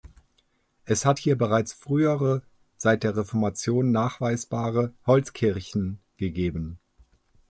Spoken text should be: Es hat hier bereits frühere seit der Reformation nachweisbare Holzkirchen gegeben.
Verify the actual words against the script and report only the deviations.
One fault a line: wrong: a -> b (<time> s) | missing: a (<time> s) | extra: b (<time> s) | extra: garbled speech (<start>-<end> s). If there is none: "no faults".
no faults